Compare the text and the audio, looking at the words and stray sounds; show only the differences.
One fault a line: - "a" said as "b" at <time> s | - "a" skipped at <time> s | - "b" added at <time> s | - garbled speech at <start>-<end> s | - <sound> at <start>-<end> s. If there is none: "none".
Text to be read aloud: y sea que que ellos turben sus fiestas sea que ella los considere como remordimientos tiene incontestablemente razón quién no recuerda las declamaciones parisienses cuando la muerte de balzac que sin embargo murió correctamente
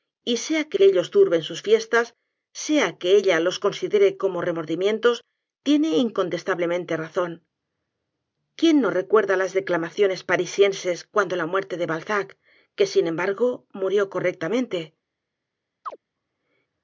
- chirp at 15.8-16.0 s